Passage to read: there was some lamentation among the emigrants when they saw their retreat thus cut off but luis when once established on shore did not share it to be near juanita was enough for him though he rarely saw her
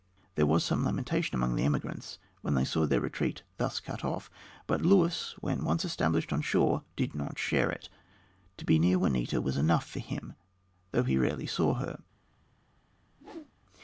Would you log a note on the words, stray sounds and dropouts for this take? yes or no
yes